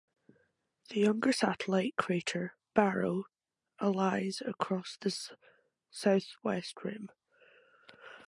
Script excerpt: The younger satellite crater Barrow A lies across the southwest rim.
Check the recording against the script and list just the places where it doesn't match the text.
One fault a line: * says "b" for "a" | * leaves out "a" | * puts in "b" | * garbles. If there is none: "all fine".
all fine